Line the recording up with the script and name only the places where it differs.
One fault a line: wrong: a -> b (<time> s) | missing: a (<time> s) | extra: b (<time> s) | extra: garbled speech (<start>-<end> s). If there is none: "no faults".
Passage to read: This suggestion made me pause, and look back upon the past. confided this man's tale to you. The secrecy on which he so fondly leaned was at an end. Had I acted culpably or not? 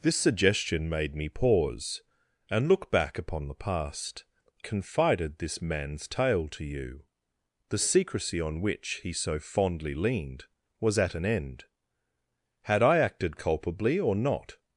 no faults